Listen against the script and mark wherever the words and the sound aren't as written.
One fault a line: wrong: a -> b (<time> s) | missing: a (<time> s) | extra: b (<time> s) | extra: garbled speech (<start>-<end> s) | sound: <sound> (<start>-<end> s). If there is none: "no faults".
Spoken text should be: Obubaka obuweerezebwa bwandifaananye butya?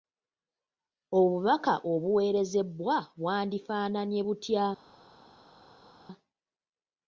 no faults